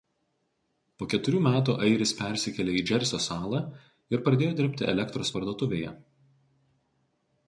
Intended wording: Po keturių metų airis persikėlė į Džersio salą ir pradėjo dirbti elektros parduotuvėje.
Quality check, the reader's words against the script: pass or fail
pass